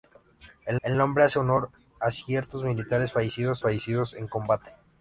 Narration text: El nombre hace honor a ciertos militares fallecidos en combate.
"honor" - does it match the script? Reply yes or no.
yes